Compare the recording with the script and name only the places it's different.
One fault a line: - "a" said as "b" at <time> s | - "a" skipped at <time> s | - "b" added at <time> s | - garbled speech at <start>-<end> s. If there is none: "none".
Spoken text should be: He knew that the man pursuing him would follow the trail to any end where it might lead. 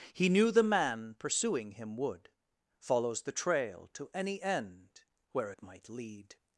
- "that" skipped at 0.5 s
- "follow" said as "follows" at 2.8 s